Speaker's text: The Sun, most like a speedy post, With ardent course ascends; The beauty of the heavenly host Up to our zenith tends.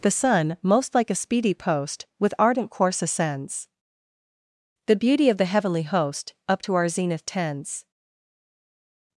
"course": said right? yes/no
yes